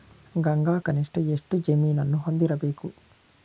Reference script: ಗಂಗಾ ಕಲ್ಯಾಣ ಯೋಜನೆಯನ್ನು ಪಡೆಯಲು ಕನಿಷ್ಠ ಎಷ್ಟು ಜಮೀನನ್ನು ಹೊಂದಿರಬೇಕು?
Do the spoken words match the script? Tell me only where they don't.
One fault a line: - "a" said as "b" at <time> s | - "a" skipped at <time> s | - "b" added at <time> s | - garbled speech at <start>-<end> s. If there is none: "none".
- "ಕಲ್ಯಾಣ ಯೋಜನೆಯನ್ನು ಪಡೆಯಲು" skipped at 0.8 s